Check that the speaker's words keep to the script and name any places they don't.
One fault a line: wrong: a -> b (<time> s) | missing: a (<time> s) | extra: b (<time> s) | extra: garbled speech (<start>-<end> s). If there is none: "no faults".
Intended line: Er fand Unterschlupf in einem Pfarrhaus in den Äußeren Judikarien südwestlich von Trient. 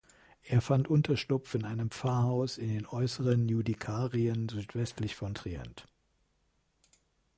no faults